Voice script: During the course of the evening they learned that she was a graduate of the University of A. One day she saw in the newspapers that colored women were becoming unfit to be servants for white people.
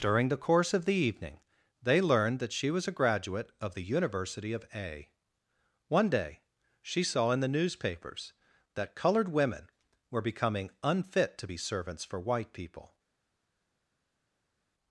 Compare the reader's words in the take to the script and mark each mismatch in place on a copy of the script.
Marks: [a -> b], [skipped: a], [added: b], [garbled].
During the course of the evening they learned that she was a graduate of the University of A. One day she saw in the newspapers that colored women were becoming unfit to be servants for white people.